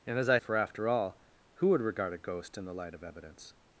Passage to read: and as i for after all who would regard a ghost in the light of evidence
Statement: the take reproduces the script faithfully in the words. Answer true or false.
true